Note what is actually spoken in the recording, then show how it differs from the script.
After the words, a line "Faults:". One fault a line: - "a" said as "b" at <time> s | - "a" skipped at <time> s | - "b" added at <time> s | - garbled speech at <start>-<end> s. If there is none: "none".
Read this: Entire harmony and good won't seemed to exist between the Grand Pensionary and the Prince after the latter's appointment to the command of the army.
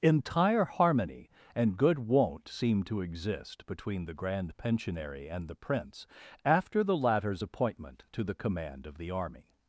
Entire harmony and good won't seemed to exist between the Grand Pensionary and the Prince after the latter's appointment to the command of the army.
Faults:
none